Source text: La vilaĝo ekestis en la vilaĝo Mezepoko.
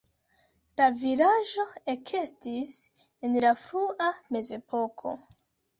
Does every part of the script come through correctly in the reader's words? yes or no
no